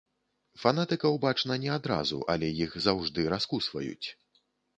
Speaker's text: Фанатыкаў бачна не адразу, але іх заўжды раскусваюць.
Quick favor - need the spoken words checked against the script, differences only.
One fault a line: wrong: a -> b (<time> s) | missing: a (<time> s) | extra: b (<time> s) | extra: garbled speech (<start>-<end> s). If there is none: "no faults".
no faults